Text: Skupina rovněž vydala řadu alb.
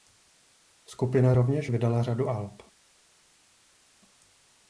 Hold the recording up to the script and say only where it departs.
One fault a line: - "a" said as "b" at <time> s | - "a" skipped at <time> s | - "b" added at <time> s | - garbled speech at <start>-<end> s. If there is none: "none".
none